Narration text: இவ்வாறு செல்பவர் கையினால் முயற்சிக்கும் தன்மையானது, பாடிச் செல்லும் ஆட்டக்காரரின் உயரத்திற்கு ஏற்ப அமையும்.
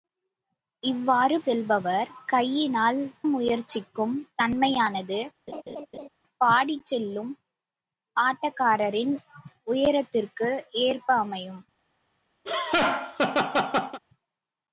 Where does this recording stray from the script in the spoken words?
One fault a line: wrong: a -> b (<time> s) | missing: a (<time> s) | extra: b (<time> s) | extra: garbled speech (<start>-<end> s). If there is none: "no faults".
no faults